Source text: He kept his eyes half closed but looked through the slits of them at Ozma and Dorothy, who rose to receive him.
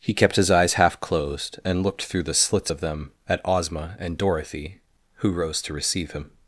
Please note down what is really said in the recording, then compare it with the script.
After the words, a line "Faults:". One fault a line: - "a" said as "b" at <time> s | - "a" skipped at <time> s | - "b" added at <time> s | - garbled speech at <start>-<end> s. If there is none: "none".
He kept his eyes half closed and looked through the slits of them at Ozma and Dorothy, who rose to receive him.
Faults:
- "but" said as "and" at 1.6 s